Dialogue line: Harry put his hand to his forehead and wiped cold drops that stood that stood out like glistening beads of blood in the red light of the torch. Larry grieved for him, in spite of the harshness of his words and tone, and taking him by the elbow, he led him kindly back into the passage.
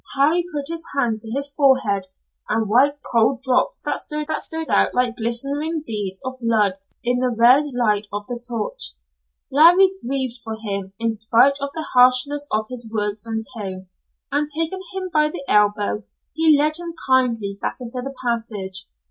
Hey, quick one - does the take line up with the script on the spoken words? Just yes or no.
yes